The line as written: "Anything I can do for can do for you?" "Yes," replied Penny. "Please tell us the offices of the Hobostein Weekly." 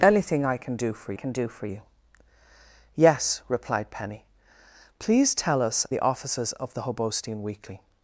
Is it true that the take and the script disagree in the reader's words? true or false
false